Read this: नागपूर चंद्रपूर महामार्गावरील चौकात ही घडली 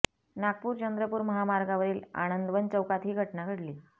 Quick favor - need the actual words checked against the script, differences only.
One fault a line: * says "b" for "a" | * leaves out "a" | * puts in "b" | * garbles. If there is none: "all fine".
* puts in "आनंदवन"
* puts in "घटना"